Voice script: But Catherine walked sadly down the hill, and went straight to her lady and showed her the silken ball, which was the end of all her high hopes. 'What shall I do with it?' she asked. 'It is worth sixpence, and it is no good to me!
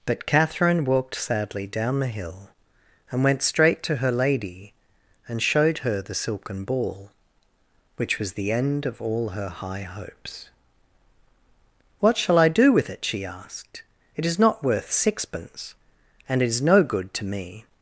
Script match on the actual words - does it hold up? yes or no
no